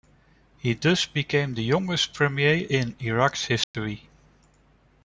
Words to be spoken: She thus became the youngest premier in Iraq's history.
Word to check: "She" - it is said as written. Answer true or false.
false